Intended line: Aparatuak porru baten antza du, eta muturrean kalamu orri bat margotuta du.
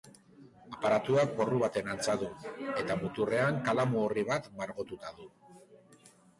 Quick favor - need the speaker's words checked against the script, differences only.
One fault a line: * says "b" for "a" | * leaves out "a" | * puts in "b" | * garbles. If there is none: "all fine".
all fine